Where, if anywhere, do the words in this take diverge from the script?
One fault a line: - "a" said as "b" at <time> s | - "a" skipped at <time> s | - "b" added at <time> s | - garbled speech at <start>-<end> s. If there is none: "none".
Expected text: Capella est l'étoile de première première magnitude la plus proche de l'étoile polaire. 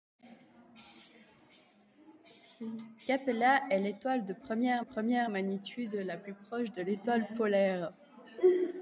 none